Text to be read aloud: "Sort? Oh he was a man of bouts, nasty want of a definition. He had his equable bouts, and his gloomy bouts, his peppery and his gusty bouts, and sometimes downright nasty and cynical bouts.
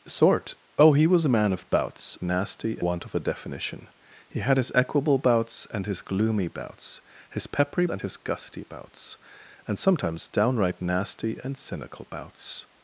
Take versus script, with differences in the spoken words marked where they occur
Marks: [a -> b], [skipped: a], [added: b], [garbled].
"Sort? Oh he was a man of bouts, nasty want of a definition. He had his equable bouts, and his gloomy bouts, his peppery and his gusty bouts, and sometimes downright nasty and cynical bouts.